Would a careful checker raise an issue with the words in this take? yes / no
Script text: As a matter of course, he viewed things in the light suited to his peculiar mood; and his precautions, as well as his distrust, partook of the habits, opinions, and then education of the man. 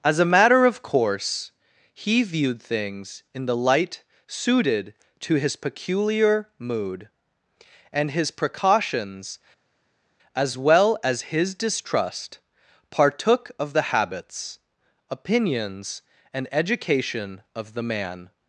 yes